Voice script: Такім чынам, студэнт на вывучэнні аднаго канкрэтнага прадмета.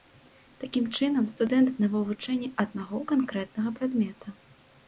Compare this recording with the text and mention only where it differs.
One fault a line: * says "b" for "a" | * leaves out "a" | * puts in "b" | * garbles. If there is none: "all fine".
all fine